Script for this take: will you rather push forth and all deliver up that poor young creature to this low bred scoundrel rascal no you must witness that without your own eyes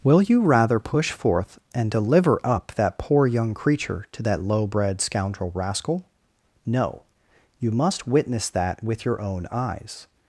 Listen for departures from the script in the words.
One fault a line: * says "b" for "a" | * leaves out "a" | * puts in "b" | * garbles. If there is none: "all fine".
* leaves out "all"
* says "that" for "this"
* says "with" for "without"